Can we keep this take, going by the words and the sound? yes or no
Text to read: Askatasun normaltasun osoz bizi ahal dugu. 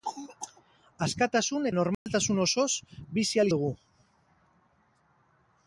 no